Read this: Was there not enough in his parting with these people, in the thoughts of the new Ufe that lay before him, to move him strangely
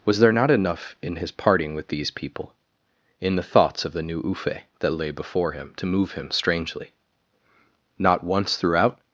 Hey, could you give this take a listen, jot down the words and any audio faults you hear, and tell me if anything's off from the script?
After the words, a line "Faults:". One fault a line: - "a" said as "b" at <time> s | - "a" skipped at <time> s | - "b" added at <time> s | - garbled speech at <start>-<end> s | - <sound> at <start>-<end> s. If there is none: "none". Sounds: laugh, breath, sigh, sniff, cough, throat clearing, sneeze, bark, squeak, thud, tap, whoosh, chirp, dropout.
Was there not enough in his parting with these people, in the thoughts of the new Ufe that lay before him, to move him strangely Not once throughout
Faults:
- "Not once throughout" added at 8.0 s